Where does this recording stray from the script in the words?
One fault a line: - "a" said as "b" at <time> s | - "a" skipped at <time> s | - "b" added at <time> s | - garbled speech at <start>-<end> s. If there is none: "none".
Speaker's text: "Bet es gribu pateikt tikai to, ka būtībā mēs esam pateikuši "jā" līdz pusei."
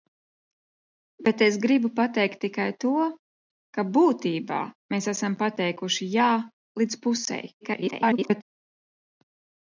- garbled speech at 7.6-8.4 s